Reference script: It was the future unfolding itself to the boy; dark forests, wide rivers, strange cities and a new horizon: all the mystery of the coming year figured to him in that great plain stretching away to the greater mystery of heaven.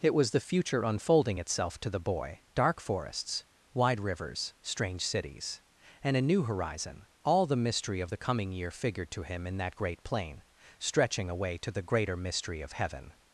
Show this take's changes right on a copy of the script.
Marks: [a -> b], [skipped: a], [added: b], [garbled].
It was the future unfolding itself to the boy; dark forests, wide rivers, strange cities and a new horizon: all the mystery of the coming year figured to him in that great plain stretching away to the greater mystery of heaven.